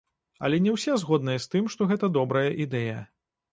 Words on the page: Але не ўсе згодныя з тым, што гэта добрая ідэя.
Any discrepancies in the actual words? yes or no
no